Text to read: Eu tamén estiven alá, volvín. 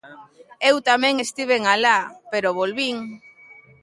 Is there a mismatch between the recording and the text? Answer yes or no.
yes